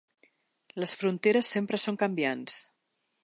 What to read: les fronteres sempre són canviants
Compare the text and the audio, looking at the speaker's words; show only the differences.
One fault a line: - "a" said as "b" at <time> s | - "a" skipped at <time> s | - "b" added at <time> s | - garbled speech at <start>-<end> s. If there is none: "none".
none